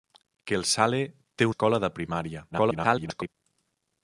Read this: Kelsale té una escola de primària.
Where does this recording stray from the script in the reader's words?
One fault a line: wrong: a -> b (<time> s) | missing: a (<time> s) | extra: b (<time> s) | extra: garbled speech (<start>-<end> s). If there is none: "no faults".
missing: una (1.5 s)
extra: garbled speech (2.5-3.3 s)